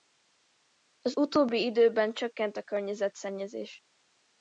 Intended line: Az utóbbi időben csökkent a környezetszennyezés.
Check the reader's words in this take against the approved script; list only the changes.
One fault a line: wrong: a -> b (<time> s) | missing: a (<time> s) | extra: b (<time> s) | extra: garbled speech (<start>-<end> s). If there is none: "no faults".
no faults